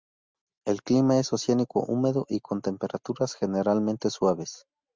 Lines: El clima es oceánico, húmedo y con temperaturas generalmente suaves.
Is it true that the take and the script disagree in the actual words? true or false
false